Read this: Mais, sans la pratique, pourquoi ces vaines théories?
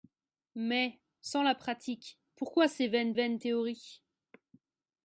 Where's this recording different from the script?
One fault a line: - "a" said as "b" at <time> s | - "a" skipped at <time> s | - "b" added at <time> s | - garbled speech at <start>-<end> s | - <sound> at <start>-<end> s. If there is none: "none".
- "vaines" added at 3.1 s